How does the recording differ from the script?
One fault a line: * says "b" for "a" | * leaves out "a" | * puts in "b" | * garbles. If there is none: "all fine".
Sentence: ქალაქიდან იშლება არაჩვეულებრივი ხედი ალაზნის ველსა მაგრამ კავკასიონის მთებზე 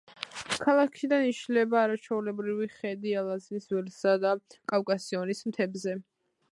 * says "და" for "მაგრამ"